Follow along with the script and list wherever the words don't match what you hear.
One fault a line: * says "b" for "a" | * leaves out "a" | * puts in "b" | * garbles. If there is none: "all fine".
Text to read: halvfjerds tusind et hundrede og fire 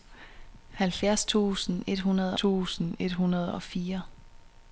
* puts in "tusind et hundrede"